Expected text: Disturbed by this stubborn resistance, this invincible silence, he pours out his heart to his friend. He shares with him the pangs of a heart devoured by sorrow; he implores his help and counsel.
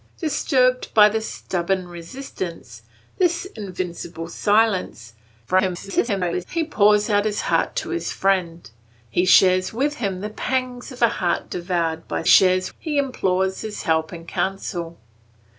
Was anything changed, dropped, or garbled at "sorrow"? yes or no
yes